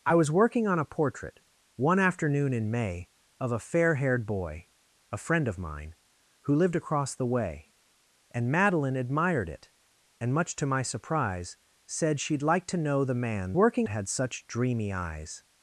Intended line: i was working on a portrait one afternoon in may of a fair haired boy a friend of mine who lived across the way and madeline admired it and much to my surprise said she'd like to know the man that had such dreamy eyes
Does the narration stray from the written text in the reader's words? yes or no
yes